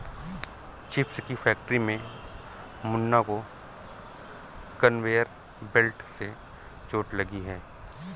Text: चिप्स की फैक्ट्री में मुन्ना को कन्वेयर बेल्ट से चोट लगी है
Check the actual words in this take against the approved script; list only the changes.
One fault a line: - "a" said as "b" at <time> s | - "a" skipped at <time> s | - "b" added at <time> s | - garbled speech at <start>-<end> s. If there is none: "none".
none